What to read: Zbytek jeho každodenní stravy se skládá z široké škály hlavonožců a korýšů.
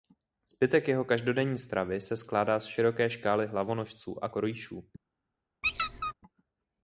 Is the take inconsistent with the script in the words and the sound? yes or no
yes